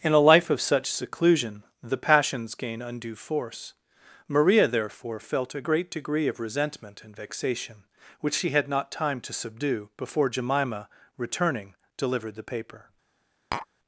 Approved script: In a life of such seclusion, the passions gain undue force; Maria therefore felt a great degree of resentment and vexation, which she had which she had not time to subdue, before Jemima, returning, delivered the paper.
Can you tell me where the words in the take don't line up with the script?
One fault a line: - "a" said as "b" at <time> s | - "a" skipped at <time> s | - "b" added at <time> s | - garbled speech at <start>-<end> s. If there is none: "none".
- "which she had" skipped at 8.7 s